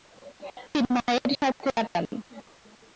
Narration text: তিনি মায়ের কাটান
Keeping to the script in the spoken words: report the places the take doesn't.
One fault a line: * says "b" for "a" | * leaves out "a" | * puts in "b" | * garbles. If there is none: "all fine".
* puts in "সাথে"